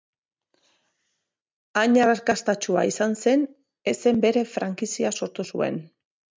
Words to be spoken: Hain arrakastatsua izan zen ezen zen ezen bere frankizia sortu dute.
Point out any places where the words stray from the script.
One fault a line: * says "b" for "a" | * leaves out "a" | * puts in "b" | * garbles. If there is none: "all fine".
* leaves out "zen ezen"
* says "zuen" for "dute"